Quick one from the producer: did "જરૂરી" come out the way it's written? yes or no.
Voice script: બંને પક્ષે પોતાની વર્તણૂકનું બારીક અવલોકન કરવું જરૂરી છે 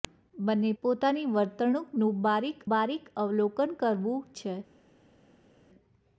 no